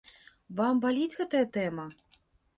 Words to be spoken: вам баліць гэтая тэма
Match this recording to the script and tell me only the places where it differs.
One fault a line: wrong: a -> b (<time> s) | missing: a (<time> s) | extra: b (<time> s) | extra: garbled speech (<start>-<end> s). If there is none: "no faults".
no faults